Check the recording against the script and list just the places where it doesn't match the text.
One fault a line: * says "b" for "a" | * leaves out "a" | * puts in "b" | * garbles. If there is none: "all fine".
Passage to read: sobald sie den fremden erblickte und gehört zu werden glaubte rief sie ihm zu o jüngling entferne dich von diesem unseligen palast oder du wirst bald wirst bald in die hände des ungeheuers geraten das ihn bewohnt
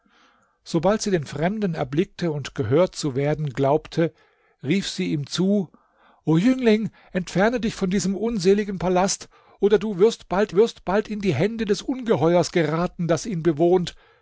all fine